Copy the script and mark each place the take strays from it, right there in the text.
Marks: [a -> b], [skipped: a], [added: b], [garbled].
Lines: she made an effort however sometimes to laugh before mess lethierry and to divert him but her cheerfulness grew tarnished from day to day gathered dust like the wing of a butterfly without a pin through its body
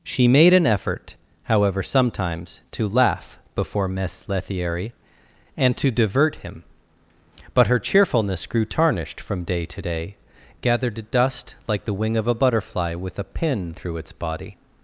she made an effort however sometimes to laugh before mess lethierry and to divert him but her cheerfulness grew tarnished from day to day gathered dust like the wing of a butterfly [without -> with] a pin through its body